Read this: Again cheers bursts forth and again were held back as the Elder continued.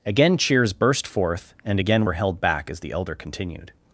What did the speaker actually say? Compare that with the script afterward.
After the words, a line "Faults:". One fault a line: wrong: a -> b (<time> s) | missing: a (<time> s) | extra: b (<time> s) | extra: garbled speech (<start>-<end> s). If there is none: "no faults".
Again cheers burst forth and again were held back as the Elder continued.
Faults:
wrong: bursts -> burst (0.7 s)